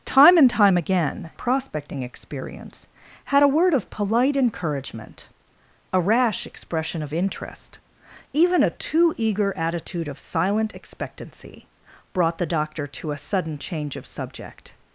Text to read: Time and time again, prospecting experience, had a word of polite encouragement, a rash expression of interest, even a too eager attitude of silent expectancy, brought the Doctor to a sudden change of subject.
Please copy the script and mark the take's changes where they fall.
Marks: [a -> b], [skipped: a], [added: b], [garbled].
Time and time again, prospecting experience, had a word of polite encouragement, a rash expression of interest, even a too eager attitude of silent expectancy, brought the Doctor to a sudden change of subject.